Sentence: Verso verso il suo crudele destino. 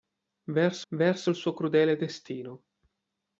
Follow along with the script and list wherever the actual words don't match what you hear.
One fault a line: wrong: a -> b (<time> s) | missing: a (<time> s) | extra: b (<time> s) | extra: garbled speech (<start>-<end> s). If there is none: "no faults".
no faults